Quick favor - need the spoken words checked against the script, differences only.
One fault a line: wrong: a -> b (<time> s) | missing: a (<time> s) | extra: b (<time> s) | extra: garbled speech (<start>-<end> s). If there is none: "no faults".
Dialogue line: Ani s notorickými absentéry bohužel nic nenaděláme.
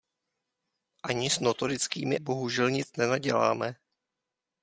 missing: absentéry (2.2 s)